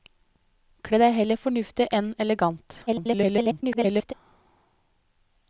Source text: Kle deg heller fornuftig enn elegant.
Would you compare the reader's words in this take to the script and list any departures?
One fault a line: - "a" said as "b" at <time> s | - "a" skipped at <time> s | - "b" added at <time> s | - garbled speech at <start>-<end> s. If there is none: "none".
- garbled speech at 2.9-4.1 s